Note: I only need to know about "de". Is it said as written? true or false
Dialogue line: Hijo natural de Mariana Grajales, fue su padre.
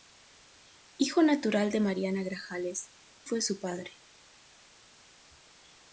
true